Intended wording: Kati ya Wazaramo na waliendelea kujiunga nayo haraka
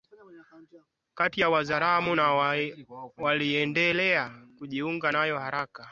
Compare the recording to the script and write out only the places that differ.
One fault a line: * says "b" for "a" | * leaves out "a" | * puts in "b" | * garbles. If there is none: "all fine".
all fine